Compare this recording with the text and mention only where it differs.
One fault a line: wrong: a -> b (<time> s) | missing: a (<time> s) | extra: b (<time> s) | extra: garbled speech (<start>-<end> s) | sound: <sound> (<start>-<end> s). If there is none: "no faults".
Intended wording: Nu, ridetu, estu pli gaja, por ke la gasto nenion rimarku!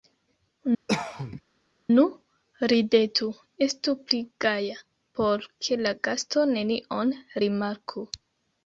sound: cough (0.9-1.4 s)